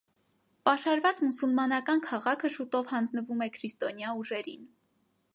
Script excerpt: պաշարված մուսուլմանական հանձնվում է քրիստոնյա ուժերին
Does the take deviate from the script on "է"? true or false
false